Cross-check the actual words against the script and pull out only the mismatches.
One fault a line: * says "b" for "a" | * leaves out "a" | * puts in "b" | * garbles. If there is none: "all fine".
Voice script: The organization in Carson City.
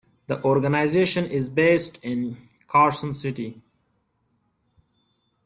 * puts in "is based"